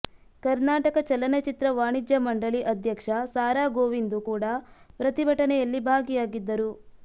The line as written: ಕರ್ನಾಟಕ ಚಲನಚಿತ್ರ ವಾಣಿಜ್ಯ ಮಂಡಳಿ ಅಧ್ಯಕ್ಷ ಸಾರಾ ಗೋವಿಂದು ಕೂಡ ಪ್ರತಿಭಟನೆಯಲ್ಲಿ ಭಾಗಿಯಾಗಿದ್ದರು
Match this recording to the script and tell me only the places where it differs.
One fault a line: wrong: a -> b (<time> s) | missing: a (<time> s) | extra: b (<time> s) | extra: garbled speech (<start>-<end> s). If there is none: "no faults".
no faults